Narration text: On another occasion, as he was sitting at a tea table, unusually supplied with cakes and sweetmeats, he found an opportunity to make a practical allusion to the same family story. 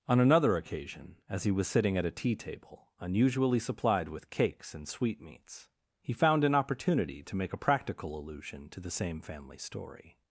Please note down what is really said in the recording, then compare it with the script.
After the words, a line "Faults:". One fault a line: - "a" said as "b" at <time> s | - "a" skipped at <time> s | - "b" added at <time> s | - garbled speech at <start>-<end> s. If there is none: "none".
On another occasion, as he was sitting at a tea table, unusually supplied with cakes and sweetmeats, he found an opportunity to make a practical allusion to the same family story.
Faults:
none